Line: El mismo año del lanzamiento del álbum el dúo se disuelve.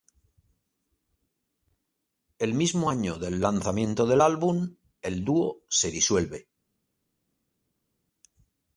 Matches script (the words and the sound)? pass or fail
pass